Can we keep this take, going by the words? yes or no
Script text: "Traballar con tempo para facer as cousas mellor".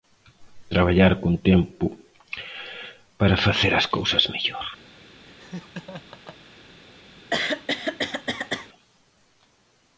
yes